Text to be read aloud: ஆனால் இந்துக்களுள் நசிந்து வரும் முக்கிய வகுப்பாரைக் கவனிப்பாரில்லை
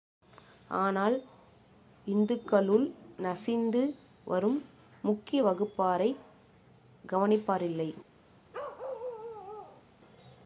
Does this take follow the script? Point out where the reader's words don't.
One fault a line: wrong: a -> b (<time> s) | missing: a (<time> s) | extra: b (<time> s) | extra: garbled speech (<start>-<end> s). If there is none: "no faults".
no faults